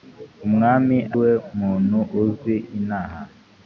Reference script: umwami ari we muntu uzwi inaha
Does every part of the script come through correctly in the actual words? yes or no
no